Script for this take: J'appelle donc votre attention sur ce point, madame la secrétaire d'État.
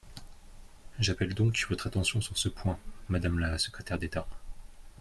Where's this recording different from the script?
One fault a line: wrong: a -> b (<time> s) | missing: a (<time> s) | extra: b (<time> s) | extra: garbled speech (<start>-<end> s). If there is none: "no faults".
no faults